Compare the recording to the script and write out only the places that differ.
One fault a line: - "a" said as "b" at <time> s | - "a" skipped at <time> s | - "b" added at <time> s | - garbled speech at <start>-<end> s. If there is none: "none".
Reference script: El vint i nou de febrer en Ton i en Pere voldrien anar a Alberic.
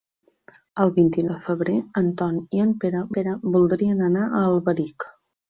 - "nou" skipped at 1.2 s
- "Pere" added at 3.2 s